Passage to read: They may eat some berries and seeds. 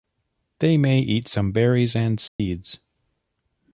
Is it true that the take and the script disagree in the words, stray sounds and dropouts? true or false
true